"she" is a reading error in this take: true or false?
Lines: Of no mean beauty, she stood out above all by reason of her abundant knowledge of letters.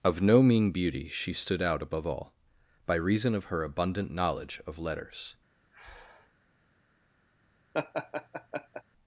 false